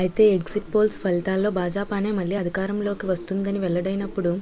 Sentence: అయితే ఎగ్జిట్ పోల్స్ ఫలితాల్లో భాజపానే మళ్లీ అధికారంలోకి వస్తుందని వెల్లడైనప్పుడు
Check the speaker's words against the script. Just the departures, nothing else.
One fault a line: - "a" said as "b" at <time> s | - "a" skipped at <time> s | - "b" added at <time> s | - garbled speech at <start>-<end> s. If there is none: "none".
none